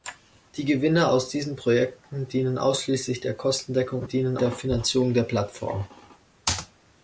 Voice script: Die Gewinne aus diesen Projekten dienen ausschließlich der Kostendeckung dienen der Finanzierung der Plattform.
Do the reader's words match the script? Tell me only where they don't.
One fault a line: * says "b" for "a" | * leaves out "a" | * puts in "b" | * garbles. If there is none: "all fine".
all fine